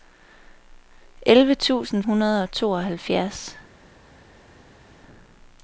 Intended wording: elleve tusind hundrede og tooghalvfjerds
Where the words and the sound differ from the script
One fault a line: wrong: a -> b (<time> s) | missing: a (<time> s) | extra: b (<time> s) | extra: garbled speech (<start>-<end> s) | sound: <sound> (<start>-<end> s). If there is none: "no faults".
no faults